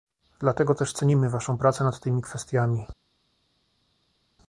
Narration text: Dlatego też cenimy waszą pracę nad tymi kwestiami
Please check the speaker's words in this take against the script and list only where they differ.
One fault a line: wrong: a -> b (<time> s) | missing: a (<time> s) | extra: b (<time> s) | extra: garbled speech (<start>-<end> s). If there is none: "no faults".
no faults